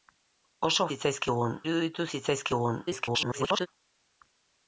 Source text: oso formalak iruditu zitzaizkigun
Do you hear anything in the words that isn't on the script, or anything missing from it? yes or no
yes